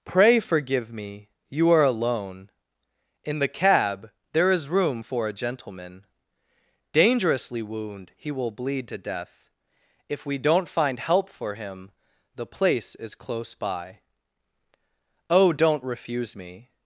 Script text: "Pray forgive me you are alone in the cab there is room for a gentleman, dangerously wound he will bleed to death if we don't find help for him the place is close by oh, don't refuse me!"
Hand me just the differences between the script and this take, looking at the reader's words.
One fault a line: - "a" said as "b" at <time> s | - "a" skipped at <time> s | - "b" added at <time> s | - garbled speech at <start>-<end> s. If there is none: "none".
none